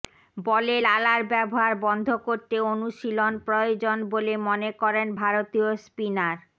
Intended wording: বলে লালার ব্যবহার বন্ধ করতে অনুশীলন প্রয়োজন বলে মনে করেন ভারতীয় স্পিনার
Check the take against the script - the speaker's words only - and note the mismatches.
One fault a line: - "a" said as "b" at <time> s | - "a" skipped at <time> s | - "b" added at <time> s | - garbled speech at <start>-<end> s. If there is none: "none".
none